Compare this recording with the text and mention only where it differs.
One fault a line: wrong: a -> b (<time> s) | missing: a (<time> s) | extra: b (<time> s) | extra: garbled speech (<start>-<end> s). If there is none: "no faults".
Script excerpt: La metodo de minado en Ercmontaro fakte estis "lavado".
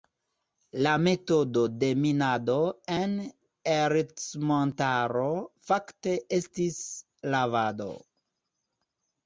no faults